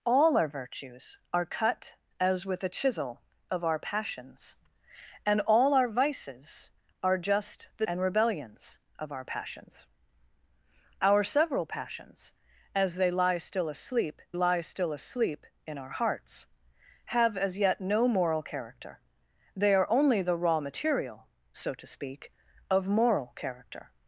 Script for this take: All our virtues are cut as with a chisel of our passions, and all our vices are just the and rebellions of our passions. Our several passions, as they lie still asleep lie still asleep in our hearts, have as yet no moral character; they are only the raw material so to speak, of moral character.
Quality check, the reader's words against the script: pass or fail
pass